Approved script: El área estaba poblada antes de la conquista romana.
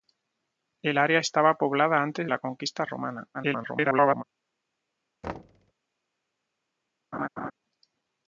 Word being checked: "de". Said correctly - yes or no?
no